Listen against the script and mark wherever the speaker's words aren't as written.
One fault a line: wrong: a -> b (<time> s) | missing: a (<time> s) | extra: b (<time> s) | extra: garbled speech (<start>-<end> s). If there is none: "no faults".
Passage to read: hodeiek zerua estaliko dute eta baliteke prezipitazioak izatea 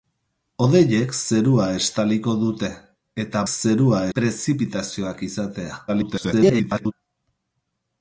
wrong: baliteke -> zerua (3.5 s)
extra: garbled speech (5.9-6.9 s)